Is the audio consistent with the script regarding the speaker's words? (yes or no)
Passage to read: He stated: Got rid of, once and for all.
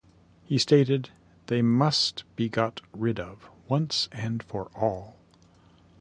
no